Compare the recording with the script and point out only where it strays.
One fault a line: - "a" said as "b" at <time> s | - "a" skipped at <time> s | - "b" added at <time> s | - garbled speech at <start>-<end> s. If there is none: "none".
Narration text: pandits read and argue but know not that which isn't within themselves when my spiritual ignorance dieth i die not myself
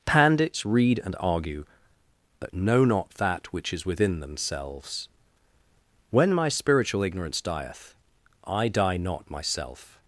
- "isn't" said as "is" at 3.7 s